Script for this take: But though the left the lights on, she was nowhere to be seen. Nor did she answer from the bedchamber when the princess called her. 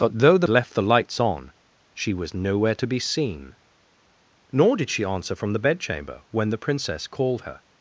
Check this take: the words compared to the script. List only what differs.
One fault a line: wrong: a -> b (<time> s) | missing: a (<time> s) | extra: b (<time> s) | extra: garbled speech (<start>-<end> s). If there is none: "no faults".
no faults